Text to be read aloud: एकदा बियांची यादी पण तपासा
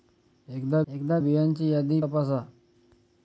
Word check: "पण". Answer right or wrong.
wrong